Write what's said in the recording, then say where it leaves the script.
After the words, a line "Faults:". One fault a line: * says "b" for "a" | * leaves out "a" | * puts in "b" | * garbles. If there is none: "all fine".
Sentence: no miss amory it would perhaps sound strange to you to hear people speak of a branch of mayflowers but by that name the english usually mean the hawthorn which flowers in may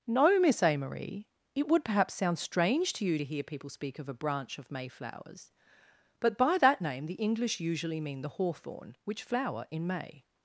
no miss amory it would perhaps sound strange to you to hear people speak of a branch of mayflowers but by that name the english usually mean the hawthorn which flower in may
Faults:
* says "flower" for "flowers"